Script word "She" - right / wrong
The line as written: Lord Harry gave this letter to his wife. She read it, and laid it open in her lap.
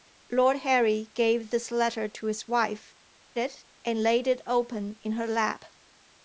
wrong